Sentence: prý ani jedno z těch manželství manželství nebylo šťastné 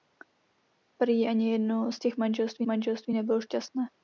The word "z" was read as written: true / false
true